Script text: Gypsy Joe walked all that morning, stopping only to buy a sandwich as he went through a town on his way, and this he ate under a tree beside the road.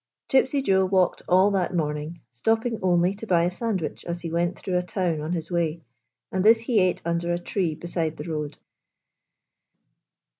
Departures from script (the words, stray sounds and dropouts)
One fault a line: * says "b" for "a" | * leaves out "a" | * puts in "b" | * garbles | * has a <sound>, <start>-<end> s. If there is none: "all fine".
all fine